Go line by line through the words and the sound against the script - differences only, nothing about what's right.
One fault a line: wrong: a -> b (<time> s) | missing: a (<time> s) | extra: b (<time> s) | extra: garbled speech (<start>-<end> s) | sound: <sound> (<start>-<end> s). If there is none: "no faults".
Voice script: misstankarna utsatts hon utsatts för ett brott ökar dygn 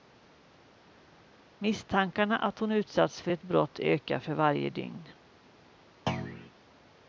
wrong: utsatts -> att (2.4 s)
extra: för varje (4.2 s)
sound: thud (6.1-6.5 s)